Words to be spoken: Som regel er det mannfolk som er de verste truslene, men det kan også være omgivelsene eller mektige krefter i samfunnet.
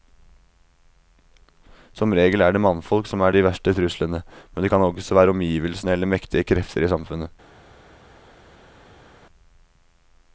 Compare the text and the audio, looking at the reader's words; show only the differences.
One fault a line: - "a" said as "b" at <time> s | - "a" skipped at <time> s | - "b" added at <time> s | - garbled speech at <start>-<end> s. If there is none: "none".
none